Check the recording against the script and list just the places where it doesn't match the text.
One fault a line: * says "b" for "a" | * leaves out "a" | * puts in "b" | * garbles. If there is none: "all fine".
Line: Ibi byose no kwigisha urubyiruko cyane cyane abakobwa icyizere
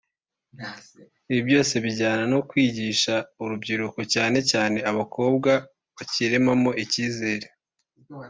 * puts in "bijyana"
* puts in "bakiremamo"